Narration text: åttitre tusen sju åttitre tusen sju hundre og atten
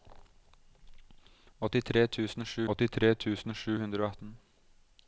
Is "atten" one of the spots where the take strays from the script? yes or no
no